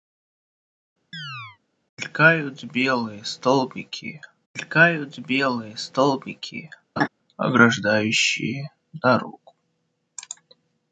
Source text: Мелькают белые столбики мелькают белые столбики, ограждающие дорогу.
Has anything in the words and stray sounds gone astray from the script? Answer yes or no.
yes